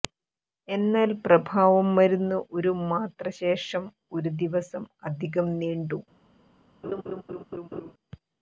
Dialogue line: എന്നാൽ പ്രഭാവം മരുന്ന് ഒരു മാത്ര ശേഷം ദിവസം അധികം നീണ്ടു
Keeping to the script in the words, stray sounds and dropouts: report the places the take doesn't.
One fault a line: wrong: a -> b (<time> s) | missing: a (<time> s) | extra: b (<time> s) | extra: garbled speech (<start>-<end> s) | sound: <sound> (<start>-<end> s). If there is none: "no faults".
extra: ഒരു (4.1 s)
sound: laugh (6.8-7.9 s)